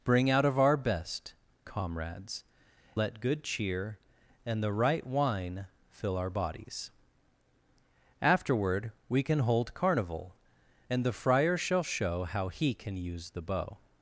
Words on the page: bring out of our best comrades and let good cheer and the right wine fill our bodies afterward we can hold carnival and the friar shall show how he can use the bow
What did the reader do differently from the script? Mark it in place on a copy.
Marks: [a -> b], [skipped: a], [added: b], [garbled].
bring out of our best comrades [skipped: and] let good cheer and the right wine fill our bodies afterward we can hold carnival and the friar shall show how he can use the bow